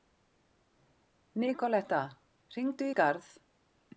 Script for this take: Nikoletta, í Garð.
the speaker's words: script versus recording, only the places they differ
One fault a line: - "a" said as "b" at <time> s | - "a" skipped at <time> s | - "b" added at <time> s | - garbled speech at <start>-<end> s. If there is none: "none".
- "hringdu" added at 2.5 s